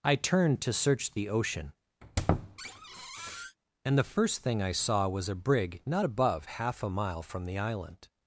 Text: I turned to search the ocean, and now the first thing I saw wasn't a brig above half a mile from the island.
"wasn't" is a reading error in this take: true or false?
true